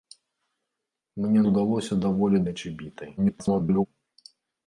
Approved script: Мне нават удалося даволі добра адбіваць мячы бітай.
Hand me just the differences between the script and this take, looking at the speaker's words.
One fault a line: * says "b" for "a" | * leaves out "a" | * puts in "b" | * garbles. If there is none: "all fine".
* leaves out "нават"
* leaves out "добра адбіваць"
* garbles